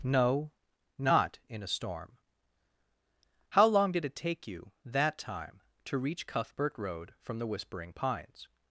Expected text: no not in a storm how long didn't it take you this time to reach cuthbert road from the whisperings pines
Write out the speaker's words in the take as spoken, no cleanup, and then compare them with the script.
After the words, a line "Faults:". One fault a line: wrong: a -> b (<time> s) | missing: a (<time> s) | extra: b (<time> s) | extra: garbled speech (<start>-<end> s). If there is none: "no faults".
no not in a storm how long did it take you that time to reach cuthbert road from the whispering pines
Faults:
wrong: didn't -> did (3.9 s)
wrong: this -> that (4.8 s)
wrong: whisperings -> whispering (7.5 s)